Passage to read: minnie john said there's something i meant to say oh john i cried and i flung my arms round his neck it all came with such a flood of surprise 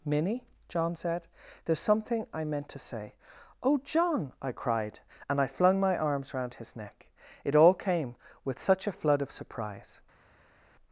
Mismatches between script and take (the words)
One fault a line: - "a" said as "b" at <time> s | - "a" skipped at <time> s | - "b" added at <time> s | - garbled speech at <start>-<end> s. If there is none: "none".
none